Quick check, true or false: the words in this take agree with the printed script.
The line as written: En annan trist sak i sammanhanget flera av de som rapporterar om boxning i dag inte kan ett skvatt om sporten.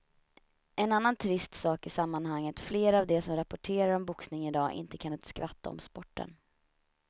true